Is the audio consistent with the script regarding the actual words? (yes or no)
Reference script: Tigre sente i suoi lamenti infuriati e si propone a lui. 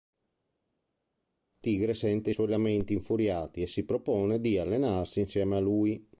no